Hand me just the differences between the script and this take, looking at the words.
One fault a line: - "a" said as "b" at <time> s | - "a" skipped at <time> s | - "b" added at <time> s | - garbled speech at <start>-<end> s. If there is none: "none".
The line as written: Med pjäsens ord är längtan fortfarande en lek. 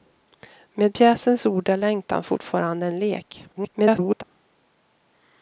- garbled speech at 3.5-4.2 s